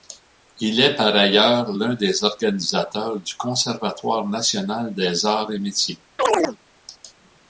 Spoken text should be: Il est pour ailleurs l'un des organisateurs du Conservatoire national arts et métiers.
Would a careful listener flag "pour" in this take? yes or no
yes